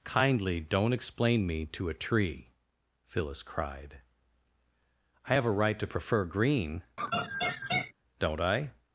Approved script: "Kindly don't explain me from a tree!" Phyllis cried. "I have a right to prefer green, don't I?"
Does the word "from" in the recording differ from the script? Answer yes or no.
yes